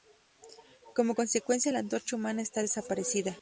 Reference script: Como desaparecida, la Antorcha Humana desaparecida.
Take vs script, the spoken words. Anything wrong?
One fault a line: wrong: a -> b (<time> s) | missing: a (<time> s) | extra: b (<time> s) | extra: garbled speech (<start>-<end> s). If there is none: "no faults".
wrong: desaparecida -> consecuencia (1.1 s)
extra: está (2.4 s)